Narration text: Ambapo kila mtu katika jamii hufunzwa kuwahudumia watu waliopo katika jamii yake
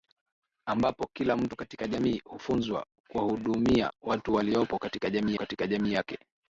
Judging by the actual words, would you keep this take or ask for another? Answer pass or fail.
fail